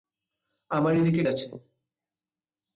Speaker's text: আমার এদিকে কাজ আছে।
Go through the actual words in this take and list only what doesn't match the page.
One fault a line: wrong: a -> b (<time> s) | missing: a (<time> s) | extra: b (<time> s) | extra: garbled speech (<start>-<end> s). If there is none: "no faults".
missing: কাজ (1.2 s)